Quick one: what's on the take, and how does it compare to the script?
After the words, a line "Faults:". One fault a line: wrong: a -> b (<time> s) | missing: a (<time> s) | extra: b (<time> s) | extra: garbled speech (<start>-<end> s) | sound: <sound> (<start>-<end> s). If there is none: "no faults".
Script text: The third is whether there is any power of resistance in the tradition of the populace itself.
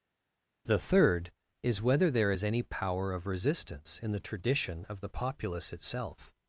The third is whether there is any power of resistance in the tradition of the populace itself.
Faults:
no faults